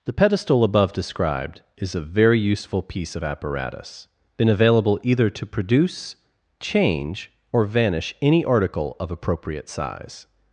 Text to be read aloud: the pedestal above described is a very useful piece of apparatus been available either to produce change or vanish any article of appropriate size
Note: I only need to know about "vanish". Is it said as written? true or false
true